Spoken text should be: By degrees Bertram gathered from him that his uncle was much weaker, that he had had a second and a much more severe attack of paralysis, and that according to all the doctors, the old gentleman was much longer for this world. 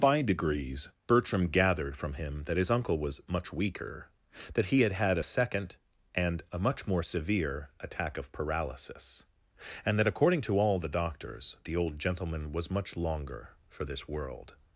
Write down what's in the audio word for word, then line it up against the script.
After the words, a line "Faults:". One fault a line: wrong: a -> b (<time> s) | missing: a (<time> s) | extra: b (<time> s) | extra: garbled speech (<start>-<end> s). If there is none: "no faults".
By degrees Bertram gathered from him that his uncle was much weaker, that he had had a second and a much more severe attack of paralysis, and that according to all the doctors, the old gentleman was much longer for this world.
Faults:
no faults